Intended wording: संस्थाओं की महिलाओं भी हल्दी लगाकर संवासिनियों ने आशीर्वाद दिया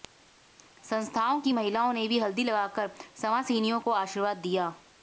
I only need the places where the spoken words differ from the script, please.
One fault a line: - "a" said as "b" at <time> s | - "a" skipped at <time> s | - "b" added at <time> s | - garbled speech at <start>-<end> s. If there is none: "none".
- "ने" added at 1.9 s
- "ने" said as "को" at 3.8 s